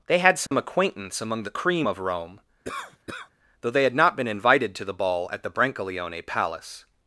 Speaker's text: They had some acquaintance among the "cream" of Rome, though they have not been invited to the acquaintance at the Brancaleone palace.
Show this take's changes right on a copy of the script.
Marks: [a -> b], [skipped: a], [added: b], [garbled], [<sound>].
They had some [dropout] acquaintance among the "cream" of Rome, [cough] though they [have -> had] not been invited to the [acquaintance -> ball] at the Brancaleone palace.